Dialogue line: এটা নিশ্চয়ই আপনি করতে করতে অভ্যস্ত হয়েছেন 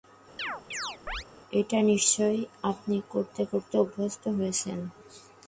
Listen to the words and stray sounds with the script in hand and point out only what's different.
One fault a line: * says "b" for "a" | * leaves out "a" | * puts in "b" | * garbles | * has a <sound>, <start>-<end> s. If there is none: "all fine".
* has a chirp, 0.4-1.3 s